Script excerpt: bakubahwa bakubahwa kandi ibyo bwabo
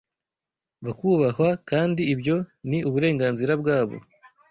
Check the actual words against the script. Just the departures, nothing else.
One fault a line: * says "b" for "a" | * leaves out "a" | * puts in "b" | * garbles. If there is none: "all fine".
* leaves out "bakubahwa"
* puts in "ni uburenganzira"